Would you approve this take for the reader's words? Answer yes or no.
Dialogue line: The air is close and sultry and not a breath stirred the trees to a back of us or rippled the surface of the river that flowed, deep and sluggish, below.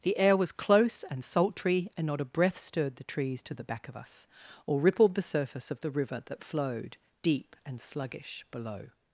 no